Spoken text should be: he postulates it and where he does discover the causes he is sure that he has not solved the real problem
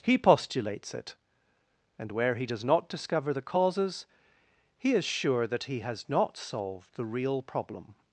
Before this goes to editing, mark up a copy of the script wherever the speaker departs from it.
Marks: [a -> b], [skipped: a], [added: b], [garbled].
he postulates it and where he does [added: not] discover the causes he is sure that he has not solved the real problem